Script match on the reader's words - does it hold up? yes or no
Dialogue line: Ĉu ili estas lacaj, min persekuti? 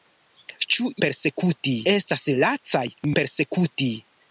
no